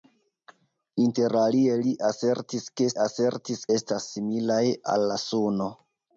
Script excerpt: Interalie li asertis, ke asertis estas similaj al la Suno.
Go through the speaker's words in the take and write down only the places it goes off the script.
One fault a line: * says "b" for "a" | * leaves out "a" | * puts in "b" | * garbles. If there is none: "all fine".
all fine